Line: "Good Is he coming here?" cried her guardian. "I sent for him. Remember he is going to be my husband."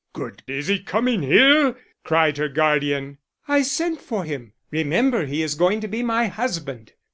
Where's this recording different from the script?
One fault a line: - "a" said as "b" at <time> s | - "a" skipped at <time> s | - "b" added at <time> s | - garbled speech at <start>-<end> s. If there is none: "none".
none